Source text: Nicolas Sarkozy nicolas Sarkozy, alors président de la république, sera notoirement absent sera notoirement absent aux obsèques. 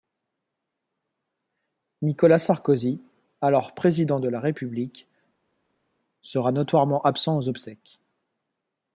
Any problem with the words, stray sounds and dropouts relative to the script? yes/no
yes